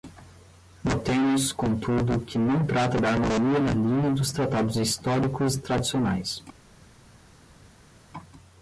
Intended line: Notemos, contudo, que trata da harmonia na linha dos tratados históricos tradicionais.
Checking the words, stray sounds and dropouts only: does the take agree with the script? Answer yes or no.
no